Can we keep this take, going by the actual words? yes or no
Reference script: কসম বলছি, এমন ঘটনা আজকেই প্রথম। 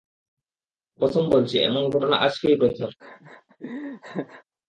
yes